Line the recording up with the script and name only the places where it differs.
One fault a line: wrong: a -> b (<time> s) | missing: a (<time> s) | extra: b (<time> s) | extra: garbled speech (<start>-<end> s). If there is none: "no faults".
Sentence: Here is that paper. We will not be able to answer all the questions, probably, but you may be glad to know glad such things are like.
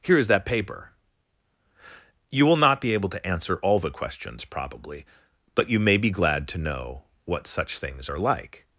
wrong: We -> You (2.3 s)
wrong: glad -> what (7.2 s)